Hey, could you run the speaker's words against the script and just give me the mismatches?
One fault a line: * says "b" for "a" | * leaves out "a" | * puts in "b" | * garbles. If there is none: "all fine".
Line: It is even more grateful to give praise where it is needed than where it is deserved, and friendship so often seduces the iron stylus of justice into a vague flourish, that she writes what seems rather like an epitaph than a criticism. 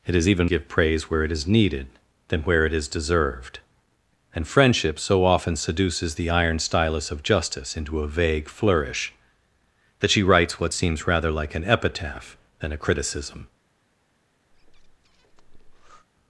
* leaves out "more grateful to"